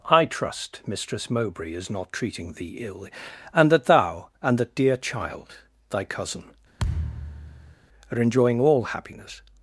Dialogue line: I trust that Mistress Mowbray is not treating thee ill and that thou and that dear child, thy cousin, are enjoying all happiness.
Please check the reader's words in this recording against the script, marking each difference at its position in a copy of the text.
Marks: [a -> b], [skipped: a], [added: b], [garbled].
I trust [skipped: that] Mistress Mowbray is not treating thee ill and that thou and that dear child, thy cousin, are enjoying all happiness.